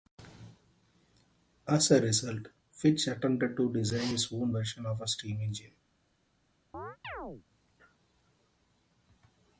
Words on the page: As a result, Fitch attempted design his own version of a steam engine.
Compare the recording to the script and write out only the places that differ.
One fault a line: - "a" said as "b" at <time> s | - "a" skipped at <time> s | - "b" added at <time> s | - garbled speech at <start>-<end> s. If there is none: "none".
- "to" added at 3.5 s